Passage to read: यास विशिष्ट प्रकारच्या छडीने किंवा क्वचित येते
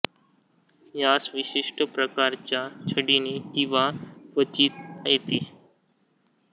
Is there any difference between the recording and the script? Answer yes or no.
no